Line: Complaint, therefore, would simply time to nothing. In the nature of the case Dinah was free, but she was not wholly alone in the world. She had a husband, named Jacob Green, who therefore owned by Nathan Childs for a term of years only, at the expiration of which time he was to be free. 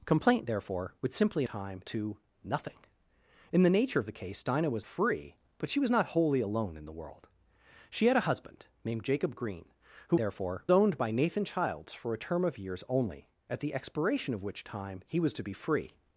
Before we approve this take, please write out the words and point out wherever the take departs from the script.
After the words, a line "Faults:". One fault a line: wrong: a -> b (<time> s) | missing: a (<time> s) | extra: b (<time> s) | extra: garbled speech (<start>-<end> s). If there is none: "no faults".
Complaint, therefore, would simply time to nothing. In the nature of the case Dinah was free, but she was not wholly alone in the world. She had a husband, named Jacob Green, who therefore owned by Nathan Childs for a term of years only, at the expiration of which time he was to be free.
Faults:
no faults